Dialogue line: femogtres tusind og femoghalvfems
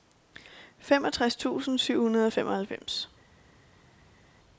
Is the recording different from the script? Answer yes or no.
yes